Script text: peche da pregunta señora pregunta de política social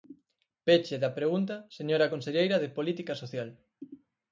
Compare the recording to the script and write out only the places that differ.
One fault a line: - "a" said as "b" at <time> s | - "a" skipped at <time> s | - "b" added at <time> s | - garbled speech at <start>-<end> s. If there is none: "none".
- "pregunta" said as "conselleira" at 2.1 s